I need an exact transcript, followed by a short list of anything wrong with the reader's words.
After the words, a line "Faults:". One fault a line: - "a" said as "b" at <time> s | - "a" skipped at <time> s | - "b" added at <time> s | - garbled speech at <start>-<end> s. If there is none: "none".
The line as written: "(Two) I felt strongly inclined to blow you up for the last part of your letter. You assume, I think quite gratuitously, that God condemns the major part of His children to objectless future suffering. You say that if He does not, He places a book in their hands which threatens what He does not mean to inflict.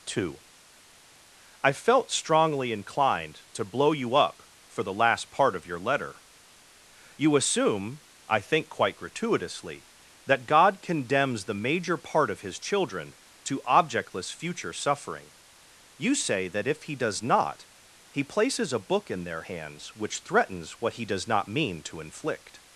"(Two) I felt strongly inclined to blow you up for the last part of your letter. You assume, I think quite gratuitously, that God condemns the major part of His children to objectless future suffering. You say that if He does not, He places a book in their hands which threatens what He does not mean to inflict.
Faults:
none